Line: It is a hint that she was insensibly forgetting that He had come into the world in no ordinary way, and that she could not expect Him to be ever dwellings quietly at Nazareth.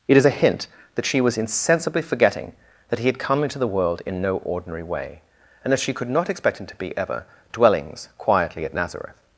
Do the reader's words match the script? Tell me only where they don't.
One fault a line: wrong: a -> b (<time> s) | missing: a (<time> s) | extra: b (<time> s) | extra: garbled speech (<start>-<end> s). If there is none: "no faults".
no faults